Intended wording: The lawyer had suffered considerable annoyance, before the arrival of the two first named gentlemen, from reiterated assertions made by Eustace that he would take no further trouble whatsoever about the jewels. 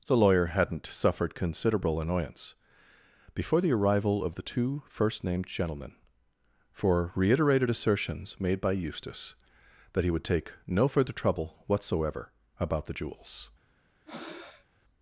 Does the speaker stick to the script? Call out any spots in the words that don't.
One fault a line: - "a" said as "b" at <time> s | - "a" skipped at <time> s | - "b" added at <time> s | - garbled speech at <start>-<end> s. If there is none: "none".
- "had" said as "hadn't" at 0.5 s
- "from" said as "for" at 6.7 s